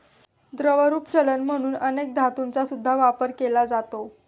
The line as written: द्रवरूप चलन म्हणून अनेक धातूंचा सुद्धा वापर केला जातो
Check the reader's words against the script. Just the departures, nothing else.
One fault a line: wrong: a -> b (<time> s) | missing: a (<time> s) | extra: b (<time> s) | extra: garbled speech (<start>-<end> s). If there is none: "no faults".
no faults